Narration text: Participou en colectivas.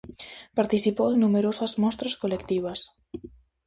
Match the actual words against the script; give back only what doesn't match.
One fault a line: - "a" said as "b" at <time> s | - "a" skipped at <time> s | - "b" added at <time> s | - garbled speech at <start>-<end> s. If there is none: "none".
- "numerosas mostras" added at 1.2 s